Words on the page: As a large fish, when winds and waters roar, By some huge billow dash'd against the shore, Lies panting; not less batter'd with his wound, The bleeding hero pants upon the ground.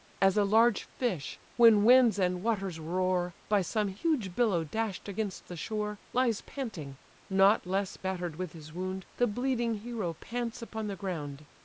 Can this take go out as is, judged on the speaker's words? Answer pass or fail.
pass